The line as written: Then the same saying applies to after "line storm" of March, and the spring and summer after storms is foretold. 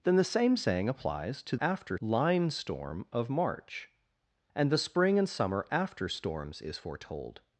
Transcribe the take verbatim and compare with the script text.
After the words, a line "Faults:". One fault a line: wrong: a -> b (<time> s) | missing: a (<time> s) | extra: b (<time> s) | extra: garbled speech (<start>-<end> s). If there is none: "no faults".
Then the same saying applies to after "line storm" of March, and the spring and summer after storms is foretold.
Faults:
no faults